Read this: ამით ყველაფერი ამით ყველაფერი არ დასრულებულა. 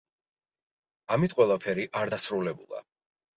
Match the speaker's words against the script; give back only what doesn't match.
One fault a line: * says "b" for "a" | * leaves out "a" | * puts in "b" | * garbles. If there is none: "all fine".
* leaves out "ამით ყველაფერი"